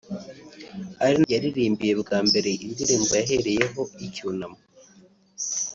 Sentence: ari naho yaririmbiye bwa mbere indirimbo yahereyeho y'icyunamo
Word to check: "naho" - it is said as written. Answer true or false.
false